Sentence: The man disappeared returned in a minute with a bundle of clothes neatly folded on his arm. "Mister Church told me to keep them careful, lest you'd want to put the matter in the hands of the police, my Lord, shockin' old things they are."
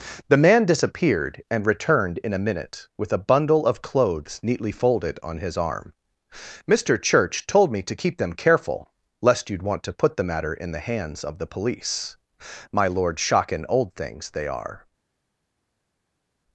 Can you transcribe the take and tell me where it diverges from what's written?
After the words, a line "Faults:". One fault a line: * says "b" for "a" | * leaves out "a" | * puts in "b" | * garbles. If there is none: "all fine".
The man disappeared and returned in a minute with a bundle of clothes neatly folded on his arm. "Mister Church told me to keep them careful, lest you'd want to put the matter in the hands of the police, my Lord, shockin' old things they are."
Faults:
* puts in "and"